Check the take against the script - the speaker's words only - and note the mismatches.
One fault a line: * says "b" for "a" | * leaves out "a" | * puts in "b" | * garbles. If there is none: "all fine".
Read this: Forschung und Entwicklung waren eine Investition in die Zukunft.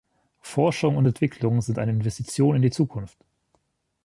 * says "sind" for "waren"